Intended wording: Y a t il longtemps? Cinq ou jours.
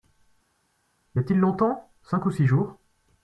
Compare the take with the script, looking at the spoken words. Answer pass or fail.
fail